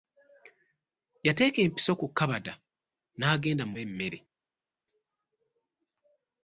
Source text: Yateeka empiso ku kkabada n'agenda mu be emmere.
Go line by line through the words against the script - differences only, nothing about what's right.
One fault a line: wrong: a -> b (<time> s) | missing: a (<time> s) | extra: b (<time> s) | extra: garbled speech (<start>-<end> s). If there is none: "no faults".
no faults